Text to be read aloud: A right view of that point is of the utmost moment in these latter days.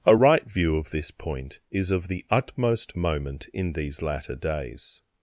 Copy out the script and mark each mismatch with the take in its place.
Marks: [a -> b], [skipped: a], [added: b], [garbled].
A right view of [that -> this] point is of the utmost moment in these latter days.